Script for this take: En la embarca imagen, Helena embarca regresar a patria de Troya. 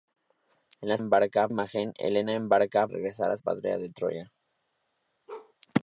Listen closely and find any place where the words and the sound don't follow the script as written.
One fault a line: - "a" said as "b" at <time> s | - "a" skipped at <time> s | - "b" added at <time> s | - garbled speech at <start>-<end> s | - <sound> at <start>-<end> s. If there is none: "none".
- bark at 5.3-5.5 s